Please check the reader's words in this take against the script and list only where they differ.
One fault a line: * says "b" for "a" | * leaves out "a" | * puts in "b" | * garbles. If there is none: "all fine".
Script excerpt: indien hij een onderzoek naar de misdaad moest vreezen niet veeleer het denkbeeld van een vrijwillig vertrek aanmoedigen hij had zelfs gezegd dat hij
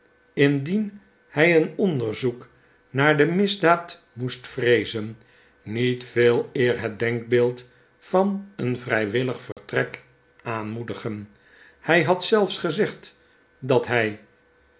all fine